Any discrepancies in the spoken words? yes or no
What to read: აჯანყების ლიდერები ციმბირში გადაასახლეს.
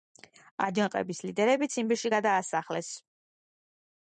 no